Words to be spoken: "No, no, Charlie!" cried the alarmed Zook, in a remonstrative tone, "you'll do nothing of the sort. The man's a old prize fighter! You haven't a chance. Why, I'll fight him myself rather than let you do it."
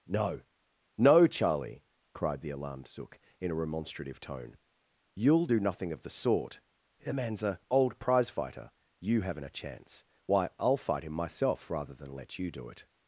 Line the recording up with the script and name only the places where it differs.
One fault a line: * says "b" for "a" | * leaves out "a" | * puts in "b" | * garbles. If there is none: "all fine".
all fine